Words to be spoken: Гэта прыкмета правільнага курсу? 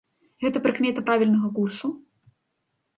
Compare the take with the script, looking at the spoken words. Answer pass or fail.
pass